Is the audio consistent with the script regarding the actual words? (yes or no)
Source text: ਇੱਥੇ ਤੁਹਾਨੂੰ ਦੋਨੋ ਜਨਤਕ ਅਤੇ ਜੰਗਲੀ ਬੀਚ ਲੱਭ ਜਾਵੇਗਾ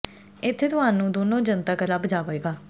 no